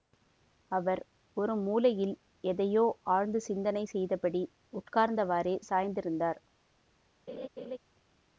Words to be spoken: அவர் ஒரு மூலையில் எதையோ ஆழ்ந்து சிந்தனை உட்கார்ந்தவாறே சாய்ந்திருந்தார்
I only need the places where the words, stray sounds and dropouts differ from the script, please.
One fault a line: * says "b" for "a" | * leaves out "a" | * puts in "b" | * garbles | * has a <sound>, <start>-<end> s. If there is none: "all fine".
* puts in "செய்தபடி"
* has a laugh, 7.3-7.8 s